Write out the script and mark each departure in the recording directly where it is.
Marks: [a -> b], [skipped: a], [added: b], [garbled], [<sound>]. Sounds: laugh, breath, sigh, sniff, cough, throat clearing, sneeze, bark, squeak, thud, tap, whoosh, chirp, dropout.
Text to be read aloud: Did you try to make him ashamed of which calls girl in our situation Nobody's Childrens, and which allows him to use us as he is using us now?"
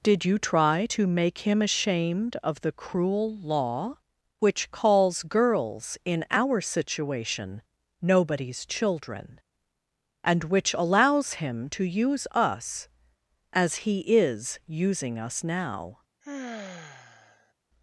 Did you try to make him ashamed of [added: the cruel law] which calls [girl -> girls] in our situation Nobody's [Childrens, -> Children] and which allows him to use us as he is using us now?" [sigh]